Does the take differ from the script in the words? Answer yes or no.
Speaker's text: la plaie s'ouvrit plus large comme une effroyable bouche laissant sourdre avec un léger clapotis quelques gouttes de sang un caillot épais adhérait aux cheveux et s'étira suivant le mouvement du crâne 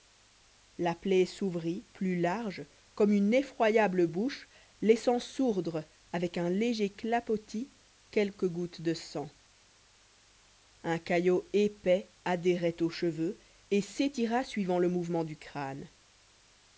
no